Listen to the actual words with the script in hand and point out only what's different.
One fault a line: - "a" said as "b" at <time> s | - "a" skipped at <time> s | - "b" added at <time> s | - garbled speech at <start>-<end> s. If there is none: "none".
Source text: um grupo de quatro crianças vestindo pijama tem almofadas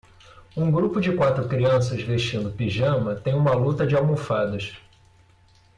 - "uma luta de" added at 3.4 s